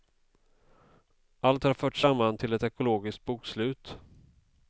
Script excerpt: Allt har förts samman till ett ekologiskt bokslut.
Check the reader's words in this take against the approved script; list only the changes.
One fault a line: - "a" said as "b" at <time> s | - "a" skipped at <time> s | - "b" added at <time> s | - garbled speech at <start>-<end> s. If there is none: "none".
none